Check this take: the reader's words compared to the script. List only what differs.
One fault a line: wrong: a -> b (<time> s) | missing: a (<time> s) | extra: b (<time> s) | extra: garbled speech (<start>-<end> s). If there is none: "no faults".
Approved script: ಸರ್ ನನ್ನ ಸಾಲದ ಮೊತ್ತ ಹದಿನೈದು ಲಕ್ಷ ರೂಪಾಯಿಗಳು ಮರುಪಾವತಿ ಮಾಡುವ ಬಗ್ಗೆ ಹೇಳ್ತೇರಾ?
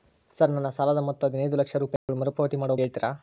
missing: ಬಗ್ಗೆ (2.8 s)